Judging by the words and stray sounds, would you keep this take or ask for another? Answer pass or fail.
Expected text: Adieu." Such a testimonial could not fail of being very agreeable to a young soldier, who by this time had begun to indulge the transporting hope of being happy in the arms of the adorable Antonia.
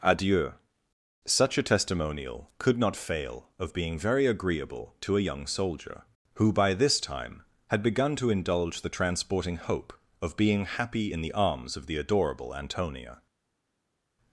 pass